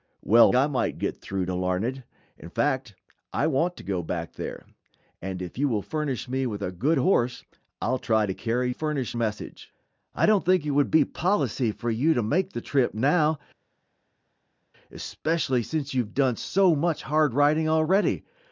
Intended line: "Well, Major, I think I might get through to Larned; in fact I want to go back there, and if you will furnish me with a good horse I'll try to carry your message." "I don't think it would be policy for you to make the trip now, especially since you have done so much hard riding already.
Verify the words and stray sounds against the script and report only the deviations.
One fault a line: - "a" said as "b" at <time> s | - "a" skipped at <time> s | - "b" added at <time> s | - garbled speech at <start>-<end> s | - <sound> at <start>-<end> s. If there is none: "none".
- "Major" skipped at 0.5 s
- "think I" skipped at 0.7 s
- "your" said as "furnish" at 8.7 s